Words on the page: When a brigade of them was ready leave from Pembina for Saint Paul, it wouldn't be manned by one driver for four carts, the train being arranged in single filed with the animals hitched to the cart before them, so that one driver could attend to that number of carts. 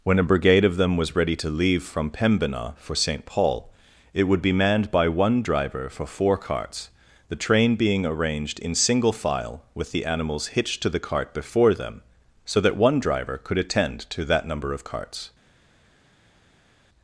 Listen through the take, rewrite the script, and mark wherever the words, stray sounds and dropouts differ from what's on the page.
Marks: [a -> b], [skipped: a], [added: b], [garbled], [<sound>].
When a brigade of them was ready [added: to] leave from Pembina for Saint Paul, it [wouldn't -> would] be manned by one driver for four carts, the train being arranged in single [filed -> file] with the animals hitched to the cart before them, so that one driver could attend to that number of carts.